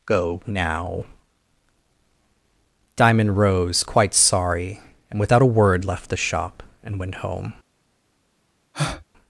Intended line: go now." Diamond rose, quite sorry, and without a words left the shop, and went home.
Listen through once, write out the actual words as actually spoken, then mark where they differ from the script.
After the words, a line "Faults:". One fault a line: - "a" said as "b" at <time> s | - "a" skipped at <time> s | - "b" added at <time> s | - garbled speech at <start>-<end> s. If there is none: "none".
go now." Diamond rose, quite sorry, and without a word left the shop, and went home.
Faults:
- "words" said as "word" at 5.5 s